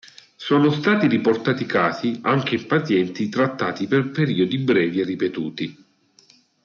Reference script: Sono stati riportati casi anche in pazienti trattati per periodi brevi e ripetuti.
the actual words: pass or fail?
pass